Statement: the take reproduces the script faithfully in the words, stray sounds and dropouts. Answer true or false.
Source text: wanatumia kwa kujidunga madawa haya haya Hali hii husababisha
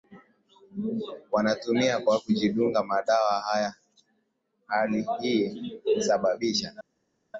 false